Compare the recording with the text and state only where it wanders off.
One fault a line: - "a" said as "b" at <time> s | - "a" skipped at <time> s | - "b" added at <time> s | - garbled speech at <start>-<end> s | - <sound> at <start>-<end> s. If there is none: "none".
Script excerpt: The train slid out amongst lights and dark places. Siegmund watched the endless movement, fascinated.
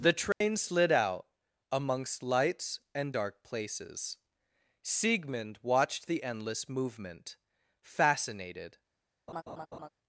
- dropout at 0.3-0.4 s
- laugh at 9.3-9.9 s